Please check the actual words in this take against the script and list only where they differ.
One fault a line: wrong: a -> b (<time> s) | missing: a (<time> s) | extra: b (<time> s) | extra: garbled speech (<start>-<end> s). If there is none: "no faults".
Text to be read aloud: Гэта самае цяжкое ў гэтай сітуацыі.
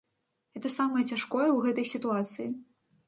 no faults